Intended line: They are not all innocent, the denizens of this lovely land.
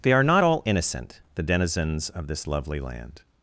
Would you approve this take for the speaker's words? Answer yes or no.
yes